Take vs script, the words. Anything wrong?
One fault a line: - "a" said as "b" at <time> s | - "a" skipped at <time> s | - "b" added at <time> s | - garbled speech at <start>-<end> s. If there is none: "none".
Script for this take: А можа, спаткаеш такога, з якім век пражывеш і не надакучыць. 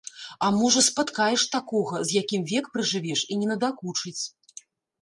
none